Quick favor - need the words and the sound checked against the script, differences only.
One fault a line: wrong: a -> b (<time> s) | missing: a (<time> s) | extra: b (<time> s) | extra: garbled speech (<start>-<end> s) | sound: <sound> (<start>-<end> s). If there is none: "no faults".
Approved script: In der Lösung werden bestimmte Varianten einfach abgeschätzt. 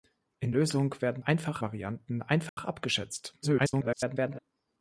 missing: der (0.5 s)
wrong: bestimmte -> einfach (1.2 s)
sound: dropout (2.5-2.6 s)
extra: garbled speech (3.4-4.4 s)